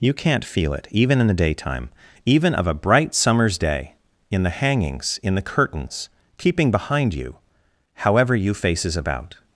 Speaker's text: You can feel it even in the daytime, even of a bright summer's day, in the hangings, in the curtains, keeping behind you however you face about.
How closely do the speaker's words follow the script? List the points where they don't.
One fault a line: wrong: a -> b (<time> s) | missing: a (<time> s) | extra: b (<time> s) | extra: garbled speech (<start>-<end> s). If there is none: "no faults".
wrong: can -> can't (0.1 s)
wrong: face -> faces (8.6 s)